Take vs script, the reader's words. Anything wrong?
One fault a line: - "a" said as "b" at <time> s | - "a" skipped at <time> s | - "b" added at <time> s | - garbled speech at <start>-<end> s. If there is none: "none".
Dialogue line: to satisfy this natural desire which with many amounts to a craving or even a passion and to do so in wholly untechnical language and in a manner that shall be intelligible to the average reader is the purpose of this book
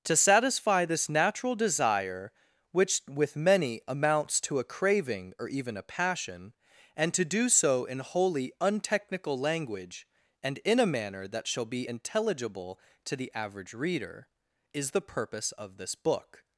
none